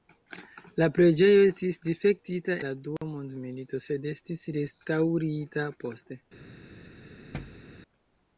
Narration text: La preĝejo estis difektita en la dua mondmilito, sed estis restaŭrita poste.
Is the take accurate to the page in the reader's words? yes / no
no